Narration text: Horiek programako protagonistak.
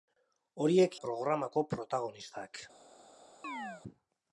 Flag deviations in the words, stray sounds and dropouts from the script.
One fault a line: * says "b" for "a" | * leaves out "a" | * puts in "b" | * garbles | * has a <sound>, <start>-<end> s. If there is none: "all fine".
* has a chirp, 3.4-3.8 s